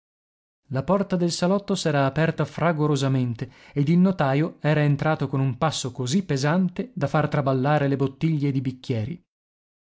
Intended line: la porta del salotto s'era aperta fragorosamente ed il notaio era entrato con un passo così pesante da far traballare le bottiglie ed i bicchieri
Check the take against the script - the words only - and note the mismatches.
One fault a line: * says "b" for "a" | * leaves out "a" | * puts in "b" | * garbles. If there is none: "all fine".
all fine